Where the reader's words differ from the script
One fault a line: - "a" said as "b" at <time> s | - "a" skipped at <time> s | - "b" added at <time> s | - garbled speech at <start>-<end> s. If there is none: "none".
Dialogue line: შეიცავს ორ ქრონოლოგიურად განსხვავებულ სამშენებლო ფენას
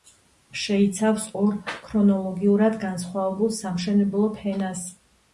none